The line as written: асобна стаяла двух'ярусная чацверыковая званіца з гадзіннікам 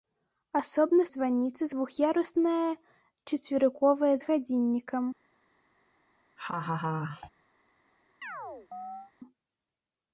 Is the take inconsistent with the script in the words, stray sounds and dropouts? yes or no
yes